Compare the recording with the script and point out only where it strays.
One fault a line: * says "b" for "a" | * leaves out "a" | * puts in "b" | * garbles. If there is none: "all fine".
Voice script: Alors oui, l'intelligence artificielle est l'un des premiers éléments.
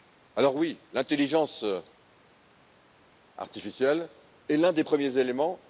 all fine